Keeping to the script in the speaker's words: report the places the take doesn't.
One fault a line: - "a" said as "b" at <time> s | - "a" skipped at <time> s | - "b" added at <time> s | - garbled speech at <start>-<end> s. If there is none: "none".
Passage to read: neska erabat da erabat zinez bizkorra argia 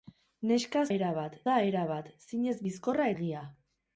none